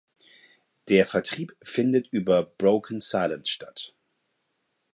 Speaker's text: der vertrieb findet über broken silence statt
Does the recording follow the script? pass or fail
pass